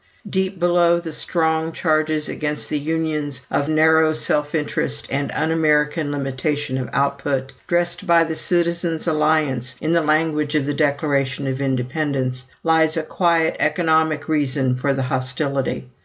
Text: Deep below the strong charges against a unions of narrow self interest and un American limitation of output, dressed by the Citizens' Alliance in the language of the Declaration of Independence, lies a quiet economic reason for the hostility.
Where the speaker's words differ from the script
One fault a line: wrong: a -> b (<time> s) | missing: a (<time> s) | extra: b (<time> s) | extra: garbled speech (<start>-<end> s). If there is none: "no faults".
wrong: a -> the (2.7 s)